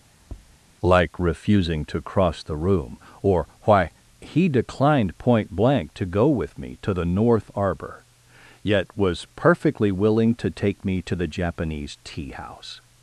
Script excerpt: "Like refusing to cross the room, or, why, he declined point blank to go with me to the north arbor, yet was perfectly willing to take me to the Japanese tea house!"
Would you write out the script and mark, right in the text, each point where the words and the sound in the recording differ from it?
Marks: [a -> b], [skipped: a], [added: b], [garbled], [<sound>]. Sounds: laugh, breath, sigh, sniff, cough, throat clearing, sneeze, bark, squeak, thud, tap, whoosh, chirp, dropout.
[tap] "Like refusing to cross the room, or, why, he declined point blank to go with me to the north arbor, yet was perfectly willing to take me to the Japanese tea house!"